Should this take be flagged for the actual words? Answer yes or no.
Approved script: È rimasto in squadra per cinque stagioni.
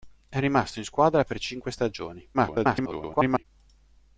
yes